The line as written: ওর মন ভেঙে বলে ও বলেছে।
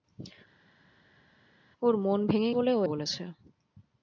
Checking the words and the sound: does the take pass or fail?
pass